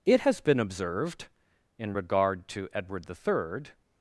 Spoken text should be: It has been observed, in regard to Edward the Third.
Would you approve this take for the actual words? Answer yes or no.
yes